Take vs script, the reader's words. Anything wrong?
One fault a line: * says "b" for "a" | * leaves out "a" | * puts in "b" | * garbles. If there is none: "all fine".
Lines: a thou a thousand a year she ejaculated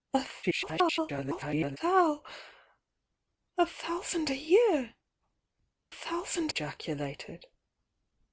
* garbles
* says "thousand" for "she"